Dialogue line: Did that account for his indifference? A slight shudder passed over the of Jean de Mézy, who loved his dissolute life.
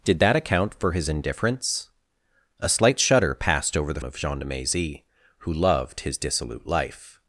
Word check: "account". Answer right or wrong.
right